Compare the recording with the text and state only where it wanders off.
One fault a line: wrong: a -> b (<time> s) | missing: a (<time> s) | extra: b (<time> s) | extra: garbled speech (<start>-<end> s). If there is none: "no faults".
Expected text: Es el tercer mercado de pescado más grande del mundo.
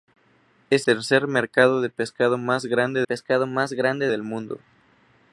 missing: el (0.9 s)
extra: pescado más grande (3.0 s)